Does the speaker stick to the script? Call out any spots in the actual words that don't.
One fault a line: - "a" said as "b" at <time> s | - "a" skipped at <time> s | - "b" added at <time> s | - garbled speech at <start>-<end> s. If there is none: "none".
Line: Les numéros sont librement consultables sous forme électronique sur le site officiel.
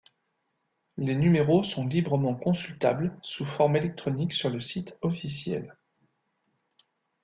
none